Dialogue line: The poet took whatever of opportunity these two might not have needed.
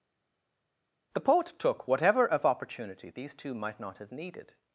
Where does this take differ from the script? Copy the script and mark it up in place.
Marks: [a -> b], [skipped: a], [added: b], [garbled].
The poet took whatever of opportunity these two might not have needed.